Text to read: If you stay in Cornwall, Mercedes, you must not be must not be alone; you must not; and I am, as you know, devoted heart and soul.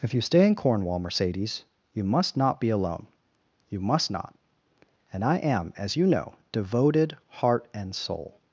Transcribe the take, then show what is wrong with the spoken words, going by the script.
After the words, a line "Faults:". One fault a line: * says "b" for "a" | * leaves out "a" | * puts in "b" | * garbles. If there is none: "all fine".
If you stay in Cornwall, Mercedes, you must not be alone; you must not; and I am, as you know, devoted heart and soul.
Faults:
* leaves out "must not be"